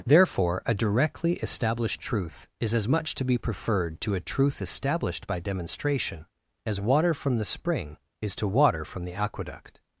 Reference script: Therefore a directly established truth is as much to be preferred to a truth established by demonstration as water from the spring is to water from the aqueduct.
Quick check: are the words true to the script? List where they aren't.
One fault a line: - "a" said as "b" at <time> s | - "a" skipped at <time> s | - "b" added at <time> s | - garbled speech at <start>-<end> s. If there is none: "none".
none